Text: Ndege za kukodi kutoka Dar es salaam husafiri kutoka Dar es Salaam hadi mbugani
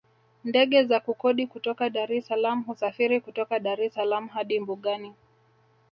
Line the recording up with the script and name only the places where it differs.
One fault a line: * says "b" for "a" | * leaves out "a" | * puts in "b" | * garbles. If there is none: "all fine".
all fine